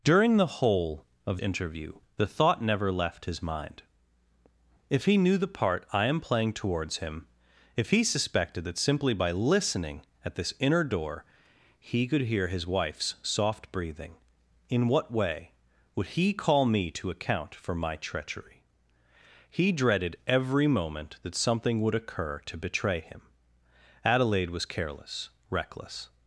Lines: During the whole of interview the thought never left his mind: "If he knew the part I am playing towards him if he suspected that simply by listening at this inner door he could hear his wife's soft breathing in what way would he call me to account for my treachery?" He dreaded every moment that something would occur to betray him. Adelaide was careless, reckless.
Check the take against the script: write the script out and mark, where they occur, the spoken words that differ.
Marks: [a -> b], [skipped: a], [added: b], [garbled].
During the whole of interview the thought never left his mind: "If he knew the part I am playing towards him if he suspected that simply by listening at this inner door he could hear his wife's soft breathing in what way would he call me to account for my treachery?" He dreaded every moment that something would occur to betray him. Adelaide was careless, reckless.